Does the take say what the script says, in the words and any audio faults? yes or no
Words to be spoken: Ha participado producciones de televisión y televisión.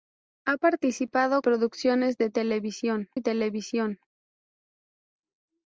yes